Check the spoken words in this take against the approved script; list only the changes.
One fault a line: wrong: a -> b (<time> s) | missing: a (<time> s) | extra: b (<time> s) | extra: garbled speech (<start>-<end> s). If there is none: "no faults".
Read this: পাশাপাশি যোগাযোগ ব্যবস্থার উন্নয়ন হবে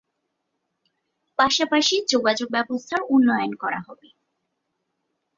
extra: করা (3.5 s)